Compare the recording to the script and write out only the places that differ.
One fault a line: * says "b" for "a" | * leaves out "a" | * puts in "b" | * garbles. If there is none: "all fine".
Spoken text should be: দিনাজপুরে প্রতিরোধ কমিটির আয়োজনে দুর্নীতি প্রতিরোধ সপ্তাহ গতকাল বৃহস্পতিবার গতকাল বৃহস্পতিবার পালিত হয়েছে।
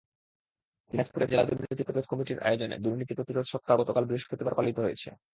* puts in "জেলা দুর্নীতি"
* leaves out "গতকাল বৃহস্পতিবার"